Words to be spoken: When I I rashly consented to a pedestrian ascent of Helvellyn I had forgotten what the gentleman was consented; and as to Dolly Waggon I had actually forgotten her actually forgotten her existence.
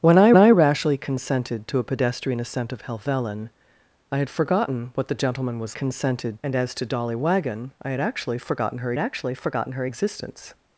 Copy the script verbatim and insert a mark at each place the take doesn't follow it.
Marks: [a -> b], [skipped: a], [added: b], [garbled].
When I I rashly consented to a pedestrian ascent of Helvellyn I had forgotten what the gentleman was consented; and as to Dolly Waggon I had actually forgotten her actually forgotten her existence.